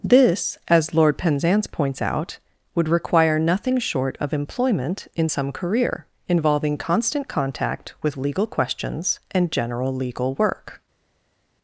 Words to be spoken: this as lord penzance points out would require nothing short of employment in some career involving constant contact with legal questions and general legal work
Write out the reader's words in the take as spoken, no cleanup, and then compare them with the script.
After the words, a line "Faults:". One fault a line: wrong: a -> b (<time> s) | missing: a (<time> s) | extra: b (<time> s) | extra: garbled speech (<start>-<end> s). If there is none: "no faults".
this as lord penzance points out would require nothing short of employment in some career involving constant contact with legal questions and general legal work
Faults:
no faults